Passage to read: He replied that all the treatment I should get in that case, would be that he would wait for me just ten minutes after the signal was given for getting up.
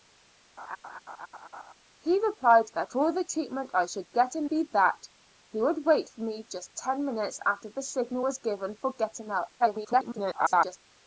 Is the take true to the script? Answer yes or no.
no